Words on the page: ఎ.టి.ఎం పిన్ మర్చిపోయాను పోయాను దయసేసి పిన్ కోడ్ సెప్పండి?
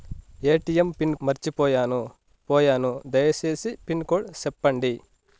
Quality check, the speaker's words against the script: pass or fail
pass